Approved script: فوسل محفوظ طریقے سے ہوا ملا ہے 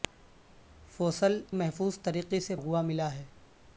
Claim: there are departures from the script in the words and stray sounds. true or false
false